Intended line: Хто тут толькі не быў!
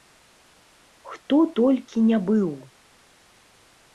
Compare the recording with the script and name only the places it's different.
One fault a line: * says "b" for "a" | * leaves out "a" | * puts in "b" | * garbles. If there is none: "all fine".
* leaves out "тут"